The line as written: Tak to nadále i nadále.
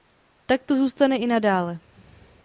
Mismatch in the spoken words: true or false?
true